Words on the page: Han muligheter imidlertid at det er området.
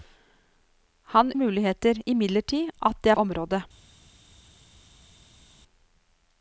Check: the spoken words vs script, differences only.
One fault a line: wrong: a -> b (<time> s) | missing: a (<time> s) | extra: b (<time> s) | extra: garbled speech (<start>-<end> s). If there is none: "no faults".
no faults